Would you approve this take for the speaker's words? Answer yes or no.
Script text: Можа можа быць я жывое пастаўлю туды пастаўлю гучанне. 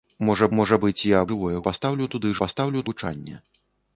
yes